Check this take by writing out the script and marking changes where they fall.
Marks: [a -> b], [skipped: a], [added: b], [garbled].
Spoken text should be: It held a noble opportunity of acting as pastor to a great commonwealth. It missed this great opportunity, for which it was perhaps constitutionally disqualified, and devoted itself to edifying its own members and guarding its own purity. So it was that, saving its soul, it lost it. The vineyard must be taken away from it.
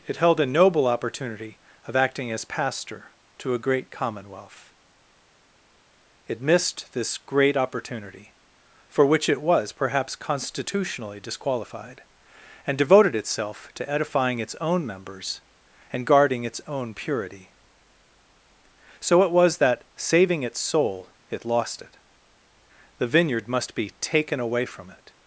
It held a noble opportunity of acting as pastor to a great commonwealth. It missed this great opportunity, for which it was perhaps constitutionally disqualified, and devoted itself to edifying its own members and guarding its own purity. So it was that, saving its soul, it lost it. The vineyard must be taken away from it.